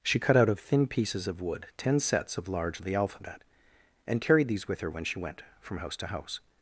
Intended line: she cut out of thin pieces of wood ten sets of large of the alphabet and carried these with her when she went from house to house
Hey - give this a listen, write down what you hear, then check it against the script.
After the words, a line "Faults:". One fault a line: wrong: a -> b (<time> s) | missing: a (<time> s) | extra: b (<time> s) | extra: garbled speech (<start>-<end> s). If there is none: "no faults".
she cut out of thin pieces of wood ten sets of large of the alphabet and carried these with her when she went from house to house
Faults:
no faults